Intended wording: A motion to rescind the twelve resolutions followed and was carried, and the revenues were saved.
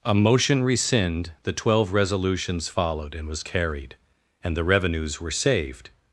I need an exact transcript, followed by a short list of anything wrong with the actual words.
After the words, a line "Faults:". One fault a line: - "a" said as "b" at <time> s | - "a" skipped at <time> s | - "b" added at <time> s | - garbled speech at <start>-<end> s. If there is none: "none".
A motion rescind the twelve resolutions followed and was carried, and the revenues were saved.
Faults:
- "to" skipped at 0.6 s